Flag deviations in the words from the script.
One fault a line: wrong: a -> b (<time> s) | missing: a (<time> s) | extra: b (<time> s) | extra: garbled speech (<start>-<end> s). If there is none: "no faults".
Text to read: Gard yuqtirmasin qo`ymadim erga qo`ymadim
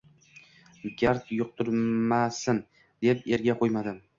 wrong: qo`ymadim -> deb (3.1 s)